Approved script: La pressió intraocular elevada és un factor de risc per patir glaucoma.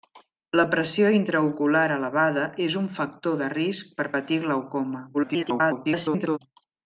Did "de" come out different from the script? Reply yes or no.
no